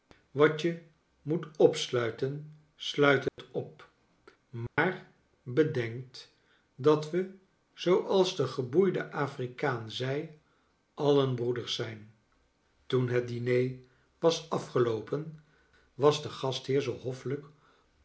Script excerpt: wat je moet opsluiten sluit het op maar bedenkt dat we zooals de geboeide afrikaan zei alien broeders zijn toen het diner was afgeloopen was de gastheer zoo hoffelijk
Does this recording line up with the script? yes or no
yes